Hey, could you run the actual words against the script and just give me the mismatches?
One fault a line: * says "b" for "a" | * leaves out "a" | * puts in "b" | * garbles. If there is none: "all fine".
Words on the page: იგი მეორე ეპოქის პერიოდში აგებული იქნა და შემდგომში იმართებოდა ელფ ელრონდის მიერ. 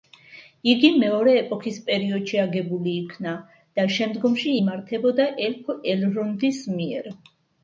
all fine